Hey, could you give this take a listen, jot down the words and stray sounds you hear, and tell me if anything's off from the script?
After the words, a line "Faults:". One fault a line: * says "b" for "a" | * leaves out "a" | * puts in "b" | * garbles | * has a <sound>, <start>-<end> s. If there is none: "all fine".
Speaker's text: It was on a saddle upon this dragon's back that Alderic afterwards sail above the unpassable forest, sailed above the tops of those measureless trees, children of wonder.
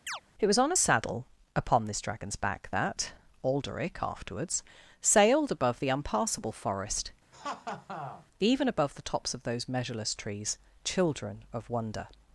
It was on a saddle upon this dragon's back that Alderic afterwards sailed above the unpassable forest, even above the tops of those measureless trees, children of wonder.
Faults:
* has a chirp, 0.1-0.2 s
* says "sailed" for "sail"
* has a laugh, 7.3-8.3 s
* says "even" for "sailed"